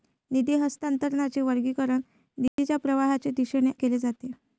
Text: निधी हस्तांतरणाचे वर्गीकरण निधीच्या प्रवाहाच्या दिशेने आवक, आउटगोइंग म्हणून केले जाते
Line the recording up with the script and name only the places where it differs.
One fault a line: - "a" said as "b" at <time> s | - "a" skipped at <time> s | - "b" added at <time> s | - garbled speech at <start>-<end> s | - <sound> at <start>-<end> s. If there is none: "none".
- dropout at 2.5-2.6 s
- "आवक आउटगोइंग म्हणून" skipped at 3.7 s